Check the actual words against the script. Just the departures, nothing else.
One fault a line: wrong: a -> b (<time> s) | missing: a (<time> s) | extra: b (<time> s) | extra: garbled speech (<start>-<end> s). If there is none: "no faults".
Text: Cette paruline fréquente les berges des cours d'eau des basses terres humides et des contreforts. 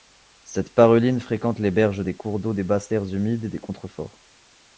no faults